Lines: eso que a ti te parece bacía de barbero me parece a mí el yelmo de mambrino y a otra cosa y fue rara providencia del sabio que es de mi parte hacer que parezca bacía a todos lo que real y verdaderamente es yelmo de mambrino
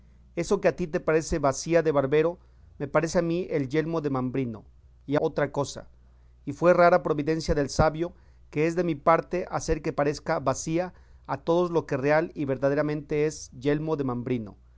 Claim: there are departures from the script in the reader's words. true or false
false